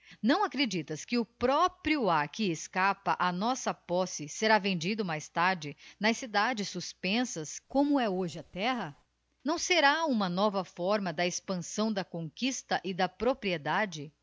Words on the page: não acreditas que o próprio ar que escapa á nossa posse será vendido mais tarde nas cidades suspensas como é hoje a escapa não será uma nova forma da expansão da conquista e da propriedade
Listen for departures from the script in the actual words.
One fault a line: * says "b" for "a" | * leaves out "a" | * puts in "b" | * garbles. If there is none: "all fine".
* says "terra" for "escapa"